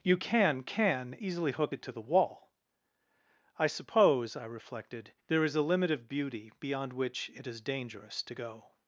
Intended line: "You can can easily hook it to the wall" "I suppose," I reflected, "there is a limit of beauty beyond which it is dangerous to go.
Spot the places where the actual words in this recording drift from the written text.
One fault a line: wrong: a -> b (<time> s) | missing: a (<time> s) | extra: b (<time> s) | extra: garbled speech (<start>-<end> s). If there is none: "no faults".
no faults